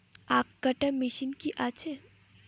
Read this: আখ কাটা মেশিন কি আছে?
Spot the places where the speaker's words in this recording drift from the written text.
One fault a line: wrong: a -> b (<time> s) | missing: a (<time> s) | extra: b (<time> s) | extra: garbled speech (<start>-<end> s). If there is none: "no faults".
no faults